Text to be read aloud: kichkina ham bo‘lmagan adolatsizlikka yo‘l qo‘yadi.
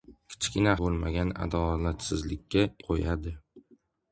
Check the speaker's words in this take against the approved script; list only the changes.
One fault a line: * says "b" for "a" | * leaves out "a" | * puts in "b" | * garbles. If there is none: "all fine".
* leaves out "ham"
* leaves out "yo‘l"